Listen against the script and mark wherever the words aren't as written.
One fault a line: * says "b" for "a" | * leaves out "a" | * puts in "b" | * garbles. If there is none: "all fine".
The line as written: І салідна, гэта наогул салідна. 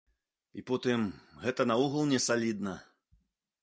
* says "потым" for "салідна"
* puts in "не"